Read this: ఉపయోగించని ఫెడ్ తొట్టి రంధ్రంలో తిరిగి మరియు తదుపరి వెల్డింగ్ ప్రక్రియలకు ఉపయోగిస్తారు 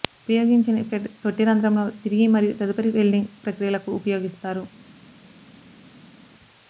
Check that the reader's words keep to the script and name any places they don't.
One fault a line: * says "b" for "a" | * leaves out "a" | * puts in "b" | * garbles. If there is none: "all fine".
all fine